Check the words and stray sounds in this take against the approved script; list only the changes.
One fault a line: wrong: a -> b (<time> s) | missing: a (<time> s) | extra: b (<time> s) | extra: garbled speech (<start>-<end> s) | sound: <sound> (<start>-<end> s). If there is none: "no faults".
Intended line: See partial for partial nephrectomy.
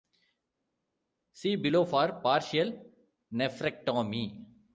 wrong: partial -> below (1.6 s)